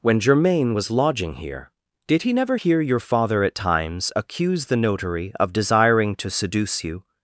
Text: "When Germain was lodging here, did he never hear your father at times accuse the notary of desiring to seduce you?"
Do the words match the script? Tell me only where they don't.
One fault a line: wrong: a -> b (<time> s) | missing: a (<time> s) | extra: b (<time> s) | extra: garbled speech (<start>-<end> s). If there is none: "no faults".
no faults